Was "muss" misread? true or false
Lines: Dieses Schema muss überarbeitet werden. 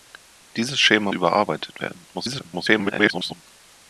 true